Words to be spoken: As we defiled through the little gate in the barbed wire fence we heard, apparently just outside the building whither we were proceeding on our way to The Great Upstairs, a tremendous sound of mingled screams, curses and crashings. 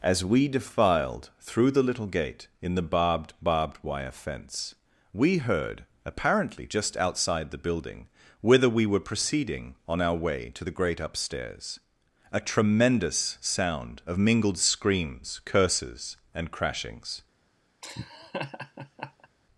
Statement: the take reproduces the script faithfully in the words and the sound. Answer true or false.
false